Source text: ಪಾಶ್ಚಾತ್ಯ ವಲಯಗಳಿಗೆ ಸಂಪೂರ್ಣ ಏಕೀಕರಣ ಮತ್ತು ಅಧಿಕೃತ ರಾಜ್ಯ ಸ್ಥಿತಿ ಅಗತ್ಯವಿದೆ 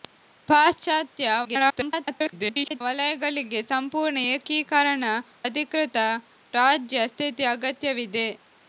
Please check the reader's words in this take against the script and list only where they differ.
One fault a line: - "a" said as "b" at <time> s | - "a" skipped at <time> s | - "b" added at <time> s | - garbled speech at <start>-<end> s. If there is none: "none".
- garbled speech at 1.4-2.8 s
- "ಮತ್ತು" skipped at 5.0 s